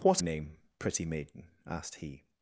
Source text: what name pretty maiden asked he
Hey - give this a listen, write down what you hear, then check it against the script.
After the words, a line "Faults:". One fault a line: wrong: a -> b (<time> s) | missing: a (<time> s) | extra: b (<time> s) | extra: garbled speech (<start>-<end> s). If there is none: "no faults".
what name pretty maiden asked he
Faults:
no faults